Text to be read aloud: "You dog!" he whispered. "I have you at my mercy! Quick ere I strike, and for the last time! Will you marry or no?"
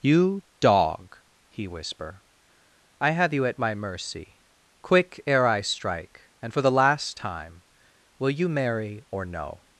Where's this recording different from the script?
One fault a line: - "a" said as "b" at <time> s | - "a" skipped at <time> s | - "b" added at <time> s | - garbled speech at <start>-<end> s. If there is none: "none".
- "whispered" said as "whisper" at 1.7 s